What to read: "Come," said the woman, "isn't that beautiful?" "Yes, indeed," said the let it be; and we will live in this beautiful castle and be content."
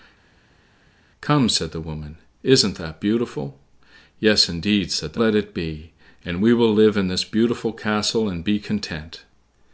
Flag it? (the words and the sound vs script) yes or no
no